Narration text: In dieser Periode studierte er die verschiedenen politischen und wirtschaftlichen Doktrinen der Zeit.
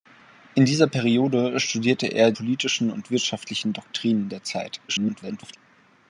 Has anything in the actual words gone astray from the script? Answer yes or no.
yes